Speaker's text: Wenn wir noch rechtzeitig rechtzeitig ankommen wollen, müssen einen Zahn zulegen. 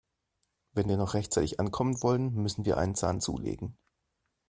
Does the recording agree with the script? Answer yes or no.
no